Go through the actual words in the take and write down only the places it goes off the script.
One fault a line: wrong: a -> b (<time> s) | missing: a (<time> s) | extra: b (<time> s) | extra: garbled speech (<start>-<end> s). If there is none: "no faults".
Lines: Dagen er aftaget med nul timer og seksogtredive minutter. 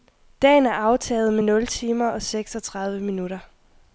no faults